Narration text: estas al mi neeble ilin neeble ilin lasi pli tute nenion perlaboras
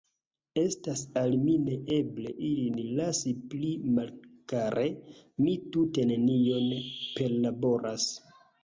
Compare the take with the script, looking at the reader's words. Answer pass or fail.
fail